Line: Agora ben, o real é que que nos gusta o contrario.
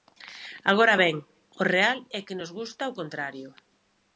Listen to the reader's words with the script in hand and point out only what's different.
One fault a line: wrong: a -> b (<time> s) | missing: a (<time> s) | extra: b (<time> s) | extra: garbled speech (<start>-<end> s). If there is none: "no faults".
missing: que (2.4 s)